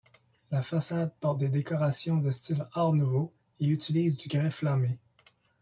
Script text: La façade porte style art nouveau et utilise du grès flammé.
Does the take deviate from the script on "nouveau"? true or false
false